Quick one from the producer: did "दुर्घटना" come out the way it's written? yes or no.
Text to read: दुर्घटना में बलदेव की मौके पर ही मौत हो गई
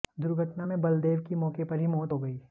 yes